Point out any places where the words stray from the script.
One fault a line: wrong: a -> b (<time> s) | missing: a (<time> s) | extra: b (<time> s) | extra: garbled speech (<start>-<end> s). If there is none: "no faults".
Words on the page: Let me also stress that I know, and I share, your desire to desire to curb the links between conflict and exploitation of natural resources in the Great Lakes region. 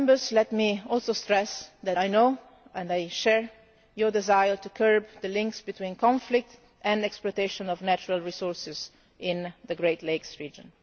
missing: desire to (4.7 s)